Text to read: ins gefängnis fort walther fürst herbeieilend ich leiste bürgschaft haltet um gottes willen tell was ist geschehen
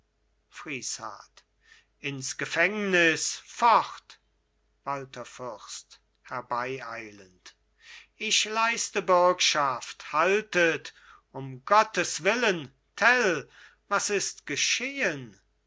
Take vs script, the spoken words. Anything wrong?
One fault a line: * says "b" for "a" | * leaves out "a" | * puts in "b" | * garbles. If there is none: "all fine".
all fine